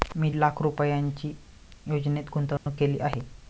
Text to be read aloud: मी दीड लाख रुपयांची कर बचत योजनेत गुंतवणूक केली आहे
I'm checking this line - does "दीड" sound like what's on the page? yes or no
no